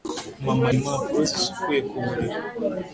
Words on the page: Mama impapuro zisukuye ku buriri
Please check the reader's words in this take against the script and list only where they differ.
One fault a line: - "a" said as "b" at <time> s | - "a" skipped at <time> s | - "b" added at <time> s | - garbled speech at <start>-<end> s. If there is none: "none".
none